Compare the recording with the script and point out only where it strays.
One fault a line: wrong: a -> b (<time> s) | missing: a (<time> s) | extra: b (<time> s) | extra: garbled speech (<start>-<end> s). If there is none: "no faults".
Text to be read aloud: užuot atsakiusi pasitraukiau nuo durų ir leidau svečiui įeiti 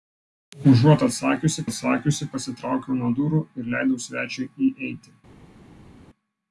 extra: atsakiusi (1.7 s)